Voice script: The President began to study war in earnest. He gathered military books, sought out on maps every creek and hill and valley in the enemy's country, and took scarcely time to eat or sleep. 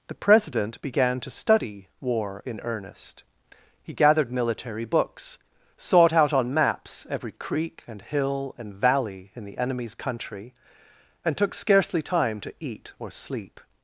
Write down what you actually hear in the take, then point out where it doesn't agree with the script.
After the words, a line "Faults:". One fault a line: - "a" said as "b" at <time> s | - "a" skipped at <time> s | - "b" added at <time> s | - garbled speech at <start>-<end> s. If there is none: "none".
The President began to study war in earnest. He gathered military books, sought out on maps every creek and hill and valley in the enemy's country, and took scarcely time to eat or sleep.
Faults:
none